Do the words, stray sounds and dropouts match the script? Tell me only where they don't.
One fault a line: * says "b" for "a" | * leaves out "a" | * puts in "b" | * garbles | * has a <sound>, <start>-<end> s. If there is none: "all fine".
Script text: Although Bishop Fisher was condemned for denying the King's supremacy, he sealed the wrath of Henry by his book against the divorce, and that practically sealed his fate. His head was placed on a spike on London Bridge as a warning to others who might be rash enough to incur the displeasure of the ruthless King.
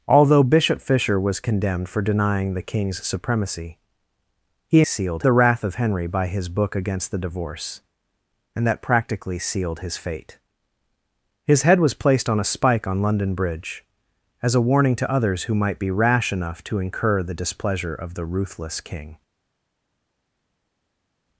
all fine